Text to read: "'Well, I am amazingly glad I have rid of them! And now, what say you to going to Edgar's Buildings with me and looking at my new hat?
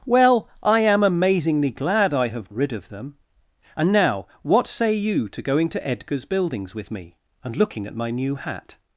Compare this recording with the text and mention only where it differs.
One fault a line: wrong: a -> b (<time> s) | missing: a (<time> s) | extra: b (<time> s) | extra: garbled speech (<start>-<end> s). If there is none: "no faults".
no faults